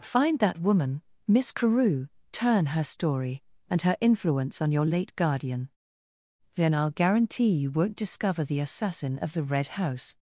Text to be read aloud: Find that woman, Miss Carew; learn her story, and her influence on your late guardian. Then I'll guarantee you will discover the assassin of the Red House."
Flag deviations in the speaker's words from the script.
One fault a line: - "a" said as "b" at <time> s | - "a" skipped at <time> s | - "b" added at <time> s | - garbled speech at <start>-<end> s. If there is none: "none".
- "learn" said as "turn" at 2.3 s
- "will" said as "won't" at 7.7 s